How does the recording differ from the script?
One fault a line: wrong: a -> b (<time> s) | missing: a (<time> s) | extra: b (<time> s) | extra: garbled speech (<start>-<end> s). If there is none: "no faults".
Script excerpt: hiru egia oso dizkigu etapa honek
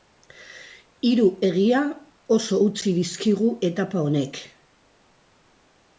extra: utzi (2.7 s)